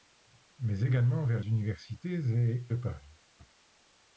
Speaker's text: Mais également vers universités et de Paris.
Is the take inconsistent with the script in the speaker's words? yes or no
no